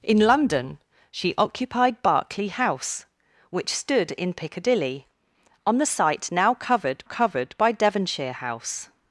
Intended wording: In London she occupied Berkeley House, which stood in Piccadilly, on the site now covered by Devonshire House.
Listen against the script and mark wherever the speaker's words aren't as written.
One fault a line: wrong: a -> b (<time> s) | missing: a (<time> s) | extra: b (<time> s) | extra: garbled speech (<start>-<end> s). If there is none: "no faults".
extra: covered (7.0 s)